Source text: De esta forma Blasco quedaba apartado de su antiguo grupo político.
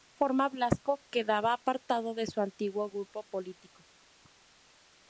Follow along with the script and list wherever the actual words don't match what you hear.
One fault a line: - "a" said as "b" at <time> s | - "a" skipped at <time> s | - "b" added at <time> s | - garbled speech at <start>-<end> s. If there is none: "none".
none